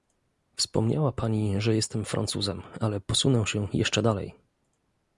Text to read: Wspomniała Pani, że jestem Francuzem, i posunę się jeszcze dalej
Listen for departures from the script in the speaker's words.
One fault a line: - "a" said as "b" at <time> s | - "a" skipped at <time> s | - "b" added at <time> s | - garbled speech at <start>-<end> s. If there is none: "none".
- "i" said as "ale" at 2.8 s